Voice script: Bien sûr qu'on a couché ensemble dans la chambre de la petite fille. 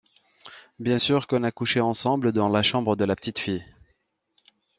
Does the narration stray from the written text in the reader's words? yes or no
no